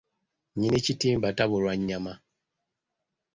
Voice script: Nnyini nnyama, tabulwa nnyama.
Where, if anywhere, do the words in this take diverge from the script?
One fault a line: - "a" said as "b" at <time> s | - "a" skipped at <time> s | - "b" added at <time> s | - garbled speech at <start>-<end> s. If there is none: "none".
- "nnyama" said as "kitimba" at 0.8 s